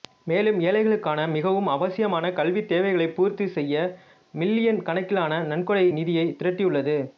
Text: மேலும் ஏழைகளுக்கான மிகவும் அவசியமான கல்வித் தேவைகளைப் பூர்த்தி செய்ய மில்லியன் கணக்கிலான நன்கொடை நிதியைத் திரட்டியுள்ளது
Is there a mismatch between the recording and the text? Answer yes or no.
no